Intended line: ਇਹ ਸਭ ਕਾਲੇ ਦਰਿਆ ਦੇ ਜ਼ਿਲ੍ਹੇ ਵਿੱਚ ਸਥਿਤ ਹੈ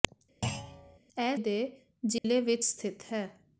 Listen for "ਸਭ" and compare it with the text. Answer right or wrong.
wrong